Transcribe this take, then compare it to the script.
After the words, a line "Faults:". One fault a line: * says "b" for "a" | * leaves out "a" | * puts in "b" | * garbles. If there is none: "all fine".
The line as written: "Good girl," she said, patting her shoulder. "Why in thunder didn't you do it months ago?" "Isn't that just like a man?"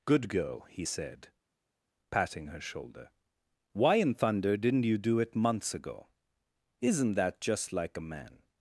"Good girl," he said, patting her shoulder. "Why in thunder didn't you do it months ago?" "Isn't that just like a man?"
Faults:
* says "he" for "she"